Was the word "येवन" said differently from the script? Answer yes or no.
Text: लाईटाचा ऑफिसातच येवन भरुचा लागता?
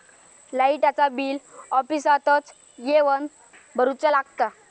no